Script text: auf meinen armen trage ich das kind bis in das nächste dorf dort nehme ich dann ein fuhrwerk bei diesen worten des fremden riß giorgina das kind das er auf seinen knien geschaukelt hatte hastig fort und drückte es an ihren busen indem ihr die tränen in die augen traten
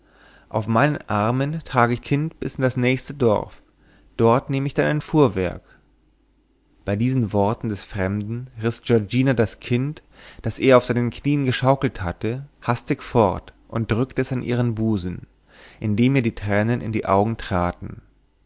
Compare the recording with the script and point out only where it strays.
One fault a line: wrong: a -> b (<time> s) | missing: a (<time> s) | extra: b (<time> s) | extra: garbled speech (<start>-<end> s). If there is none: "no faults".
missing: das (2.0 s)